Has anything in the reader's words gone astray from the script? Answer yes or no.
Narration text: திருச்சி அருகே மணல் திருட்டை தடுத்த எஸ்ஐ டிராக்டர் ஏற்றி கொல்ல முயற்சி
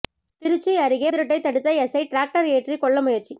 yes